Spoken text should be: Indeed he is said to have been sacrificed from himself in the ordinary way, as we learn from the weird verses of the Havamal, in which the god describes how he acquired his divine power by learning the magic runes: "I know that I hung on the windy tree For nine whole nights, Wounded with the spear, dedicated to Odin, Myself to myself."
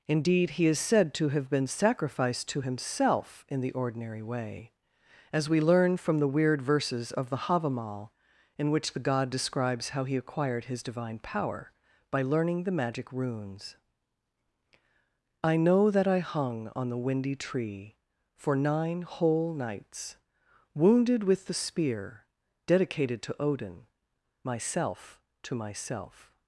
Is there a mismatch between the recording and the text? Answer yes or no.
yes